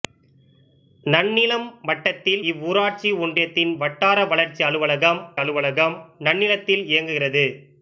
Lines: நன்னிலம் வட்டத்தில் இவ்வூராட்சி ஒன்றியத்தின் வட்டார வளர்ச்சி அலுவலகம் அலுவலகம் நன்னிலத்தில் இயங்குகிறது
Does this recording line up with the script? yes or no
yes